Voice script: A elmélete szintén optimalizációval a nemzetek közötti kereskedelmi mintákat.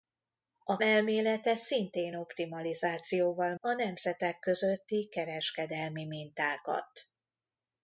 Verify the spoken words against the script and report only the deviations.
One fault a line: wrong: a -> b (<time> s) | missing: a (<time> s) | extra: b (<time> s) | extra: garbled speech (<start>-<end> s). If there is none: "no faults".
no faults